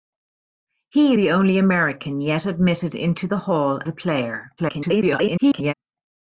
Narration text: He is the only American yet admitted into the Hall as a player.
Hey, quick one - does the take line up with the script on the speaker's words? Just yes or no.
no